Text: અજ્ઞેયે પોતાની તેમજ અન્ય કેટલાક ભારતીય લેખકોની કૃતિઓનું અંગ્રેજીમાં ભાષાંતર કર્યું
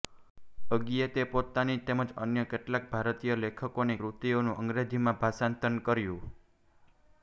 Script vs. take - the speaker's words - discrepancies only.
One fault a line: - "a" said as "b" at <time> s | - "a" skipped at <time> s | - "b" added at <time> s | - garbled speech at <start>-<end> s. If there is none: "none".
none